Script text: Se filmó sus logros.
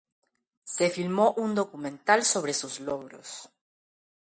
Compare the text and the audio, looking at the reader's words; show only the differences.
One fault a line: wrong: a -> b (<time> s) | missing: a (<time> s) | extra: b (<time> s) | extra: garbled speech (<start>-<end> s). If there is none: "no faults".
extra: un documental sobre (1.3 s)